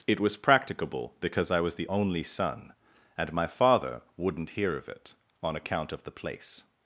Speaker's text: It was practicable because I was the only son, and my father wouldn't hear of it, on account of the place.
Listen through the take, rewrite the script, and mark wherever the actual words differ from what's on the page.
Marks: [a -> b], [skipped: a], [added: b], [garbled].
It was practicable because I was the only son, and my father wouldn't hear of it, on account of the place.